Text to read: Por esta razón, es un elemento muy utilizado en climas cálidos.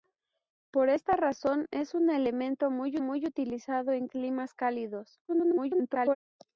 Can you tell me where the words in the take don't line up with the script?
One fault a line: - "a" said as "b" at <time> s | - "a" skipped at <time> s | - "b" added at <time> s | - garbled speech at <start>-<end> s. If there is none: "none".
- "muy" added at 3.0 s
- garbled speech at 5.3-6.2 s